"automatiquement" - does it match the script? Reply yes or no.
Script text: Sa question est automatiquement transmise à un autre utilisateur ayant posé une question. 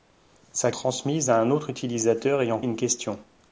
no